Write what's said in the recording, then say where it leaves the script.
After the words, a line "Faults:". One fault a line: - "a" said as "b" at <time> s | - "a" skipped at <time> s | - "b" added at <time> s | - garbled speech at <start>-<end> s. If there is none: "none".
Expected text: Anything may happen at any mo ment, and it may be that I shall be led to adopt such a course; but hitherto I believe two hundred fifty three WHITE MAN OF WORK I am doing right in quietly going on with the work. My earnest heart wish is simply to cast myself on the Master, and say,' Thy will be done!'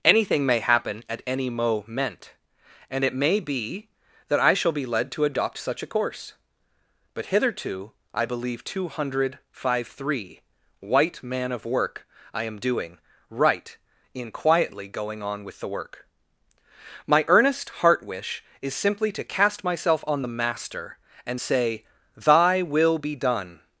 Anything may happen at any mo ment, and it may be that I shall be led to adopt such a course; but hitherto I believe two hundred five three WHITE MAN OF WORK I am doing right in quietly going on with the work. My earnest heart wish is simply to cast myself on the Master, and say,' Thy will be done!'
Faults:
- "fifty" said as "five" at 9.5 s